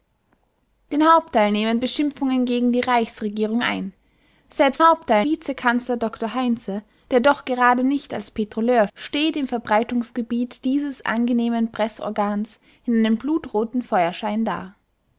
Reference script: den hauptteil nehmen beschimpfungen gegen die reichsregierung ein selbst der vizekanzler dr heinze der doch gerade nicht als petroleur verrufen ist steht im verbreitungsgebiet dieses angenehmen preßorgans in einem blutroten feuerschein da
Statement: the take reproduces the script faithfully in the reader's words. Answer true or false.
false